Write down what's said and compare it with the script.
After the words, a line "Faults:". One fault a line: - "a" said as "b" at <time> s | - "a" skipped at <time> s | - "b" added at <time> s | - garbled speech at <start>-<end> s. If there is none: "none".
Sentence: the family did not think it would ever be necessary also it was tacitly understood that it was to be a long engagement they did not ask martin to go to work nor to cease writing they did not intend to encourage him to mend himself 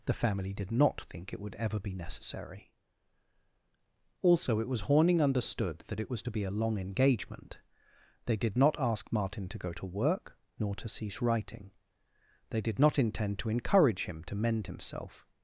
the family did not think it would ever be necessary also it was horning understood that it was to be a long engagement they did not ask martin to go to work nor to cease writing they did not intend to encourage him to mend himself
Faults:
- "tacitly" said as "horning" at 4.8 s